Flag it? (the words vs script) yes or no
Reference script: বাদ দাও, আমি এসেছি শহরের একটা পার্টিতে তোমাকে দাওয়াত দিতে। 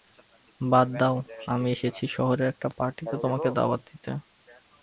no